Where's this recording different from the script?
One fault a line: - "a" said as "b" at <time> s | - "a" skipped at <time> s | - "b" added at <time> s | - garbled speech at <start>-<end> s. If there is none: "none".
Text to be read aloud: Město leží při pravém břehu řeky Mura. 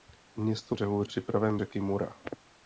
- "leží" said as "břehu" at 0.7 s
- "břehu" skipped at 1.6 s